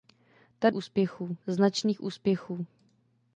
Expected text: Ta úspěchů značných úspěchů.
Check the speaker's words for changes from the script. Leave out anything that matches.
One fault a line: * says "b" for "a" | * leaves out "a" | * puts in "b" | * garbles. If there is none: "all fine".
all fine